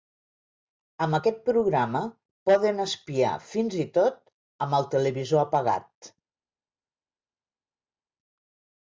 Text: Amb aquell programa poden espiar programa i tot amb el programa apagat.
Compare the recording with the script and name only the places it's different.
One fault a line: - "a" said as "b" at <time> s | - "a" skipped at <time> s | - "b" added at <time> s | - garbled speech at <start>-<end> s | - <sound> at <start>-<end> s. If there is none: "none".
- "aquell" said as "aquest" at 1.1 s
- "programa" said as "fins" at 3.5 s
- "programa" said as "televisor" at 4.9 s